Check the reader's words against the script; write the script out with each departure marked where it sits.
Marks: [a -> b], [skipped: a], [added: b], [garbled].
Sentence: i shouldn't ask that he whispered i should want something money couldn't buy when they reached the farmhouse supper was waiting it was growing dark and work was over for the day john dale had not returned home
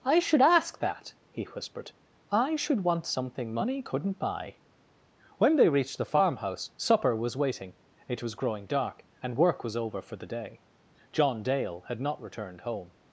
i [shouldn't -> should] ask that he whispered i should want something money couldn't buy when they reached the farmhouse supper was waiting it was growing dark and work was over for the day john dale had not returned home